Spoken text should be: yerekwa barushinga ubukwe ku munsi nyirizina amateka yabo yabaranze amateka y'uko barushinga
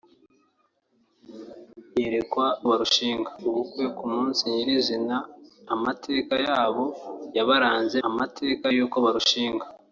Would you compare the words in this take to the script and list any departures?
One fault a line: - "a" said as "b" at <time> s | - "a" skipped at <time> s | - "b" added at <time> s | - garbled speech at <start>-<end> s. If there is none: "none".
none